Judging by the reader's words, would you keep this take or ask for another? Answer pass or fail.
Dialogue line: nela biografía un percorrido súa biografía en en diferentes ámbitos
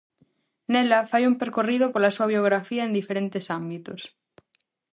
fail